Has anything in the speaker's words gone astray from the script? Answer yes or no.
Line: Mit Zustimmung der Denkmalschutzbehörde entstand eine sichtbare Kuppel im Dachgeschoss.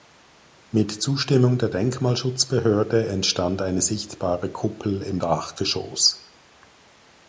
no